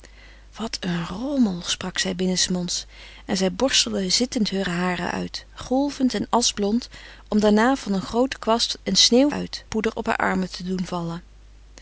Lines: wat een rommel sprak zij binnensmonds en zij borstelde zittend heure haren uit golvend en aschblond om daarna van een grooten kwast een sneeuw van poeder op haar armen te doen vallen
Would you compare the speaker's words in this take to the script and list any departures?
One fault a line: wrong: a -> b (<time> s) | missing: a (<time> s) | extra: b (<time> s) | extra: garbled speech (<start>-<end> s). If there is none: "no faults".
wrong: van -> uit (9.3 s)